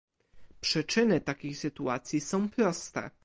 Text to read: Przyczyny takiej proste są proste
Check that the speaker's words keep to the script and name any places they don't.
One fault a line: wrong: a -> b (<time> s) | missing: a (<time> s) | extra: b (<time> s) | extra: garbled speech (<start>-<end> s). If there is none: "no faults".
wrong: proste -> sytuacji (1.6 s)